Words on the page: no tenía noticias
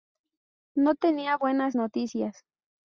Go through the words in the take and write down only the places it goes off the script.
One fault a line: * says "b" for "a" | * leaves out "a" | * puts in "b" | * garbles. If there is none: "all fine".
* puts in "buenas"